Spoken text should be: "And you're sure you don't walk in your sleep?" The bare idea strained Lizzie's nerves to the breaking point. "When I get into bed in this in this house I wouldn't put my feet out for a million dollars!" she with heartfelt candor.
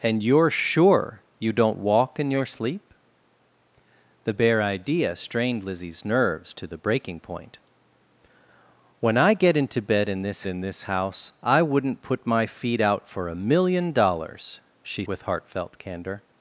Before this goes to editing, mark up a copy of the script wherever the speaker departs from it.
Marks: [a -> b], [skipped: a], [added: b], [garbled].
"And you're sure you don't walk in your sleep?" The bare idea strained Lizzie's nerves to the breaking point. "When I get into bed in this in this house I wouldn't put my feet out for a million dollars!" she with heartfelt candor.